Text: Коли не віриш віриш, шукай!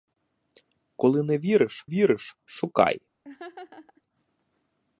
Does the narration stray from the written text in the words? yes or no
no